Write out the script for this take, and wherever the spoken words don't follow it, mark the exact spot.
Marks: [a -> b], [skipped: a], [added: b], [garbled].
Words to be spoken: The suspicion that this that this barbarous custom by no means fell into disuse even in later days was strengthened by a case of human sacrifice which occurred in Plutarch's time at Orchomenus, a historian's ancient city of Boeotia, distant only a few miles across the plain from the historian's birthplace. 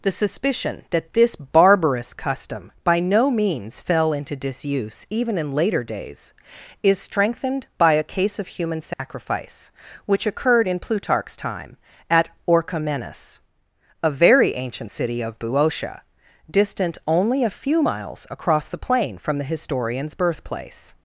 The suspicion that this [skipped: that this] barbarous custom by no means fell into disuse even in later days [was -> is] strengthened by a case of human sacrifice which occurred in Plutarch's time at Orchomenus, a [historian's -> very] ancient city of Boeotia, distant only a few miles across the plain from the historian's birthplace.